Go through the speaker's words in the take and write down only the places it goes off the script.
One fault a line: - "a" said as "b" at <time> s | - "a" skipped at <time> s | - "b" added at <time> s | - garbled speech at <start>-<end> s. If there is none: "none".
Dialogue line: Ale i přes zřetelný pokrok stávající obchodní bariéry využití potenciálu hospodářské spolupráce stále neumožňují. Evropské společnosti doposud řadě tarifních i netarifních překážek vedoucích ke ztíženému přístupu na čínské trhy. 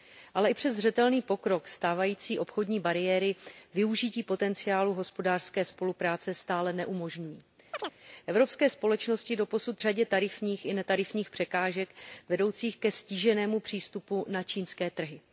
none